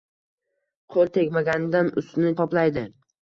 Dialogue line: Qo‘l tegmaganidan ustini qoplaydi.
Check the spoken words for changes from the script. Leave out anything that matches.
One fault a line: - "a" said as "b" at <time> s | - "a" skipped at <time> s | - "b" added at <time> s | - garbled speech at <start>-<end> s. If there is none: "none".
none